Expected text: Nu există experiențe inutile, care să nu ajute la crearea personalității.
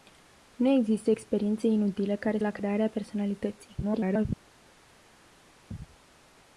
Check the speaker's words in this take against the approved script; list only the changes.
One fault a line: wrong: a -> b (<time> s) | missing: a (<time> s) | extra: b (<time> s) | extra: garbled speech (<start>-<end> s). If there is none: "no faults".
missing: să nu ajute (2.4 s)
extra: garbled speech (3.8-4.3 s)